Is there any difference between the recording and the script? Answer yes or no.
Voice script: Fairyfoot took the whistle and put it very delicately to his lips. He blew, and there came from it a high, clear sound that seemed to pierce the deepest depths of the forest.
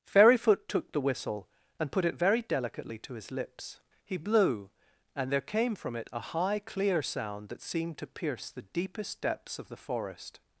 no